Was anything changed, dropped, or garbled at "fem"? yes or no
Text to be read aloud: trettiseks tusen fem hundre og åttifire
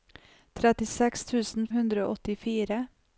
yes